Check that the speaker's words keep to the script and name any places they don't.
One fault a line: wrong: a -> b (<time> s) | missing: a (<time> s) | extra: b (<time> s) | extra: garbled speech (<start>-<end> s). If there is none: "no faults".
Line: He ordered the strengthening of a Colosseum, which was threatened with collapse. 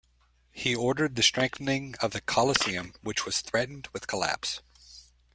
wrong: a -> the (2.1 s)